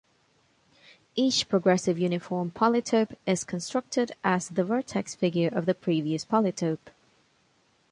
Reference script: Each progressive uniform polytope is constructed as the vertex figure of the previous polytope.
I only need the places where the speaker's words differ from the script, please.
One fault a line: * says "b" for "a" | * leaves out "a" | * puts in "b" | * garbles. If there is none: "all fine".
all fine